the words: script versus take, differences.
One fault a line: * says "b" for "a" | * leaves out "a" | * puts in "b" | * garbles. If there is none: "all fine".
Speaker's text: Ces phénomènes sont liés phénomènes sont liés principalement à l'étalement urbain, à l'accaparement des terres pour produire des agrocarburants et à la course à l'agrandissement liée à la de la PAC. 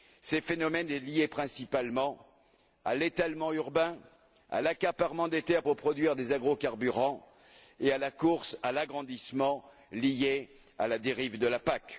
* leaves out "phénomènes sont liés"
* puts in "dérive"